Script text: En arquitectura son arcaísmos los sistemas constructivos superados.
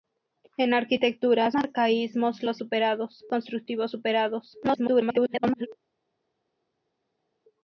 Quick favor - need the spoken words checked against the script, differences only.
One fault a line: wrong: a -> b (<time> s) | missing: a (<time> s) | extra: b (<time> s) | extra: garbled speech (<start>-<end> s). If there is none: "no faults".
missing: son (1.5 s)
wrong: sistemas -> superados (2.6 s)
extra: garbled speech (4.6-5.7 s)